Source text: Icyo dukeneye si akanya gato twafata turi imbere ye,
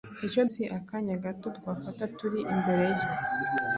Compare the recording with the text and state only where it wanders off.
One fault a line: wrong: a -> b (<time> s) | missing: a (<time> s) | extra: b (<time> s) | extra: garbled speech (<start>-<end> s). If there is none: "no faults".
missing: dukeneye (0.4 s)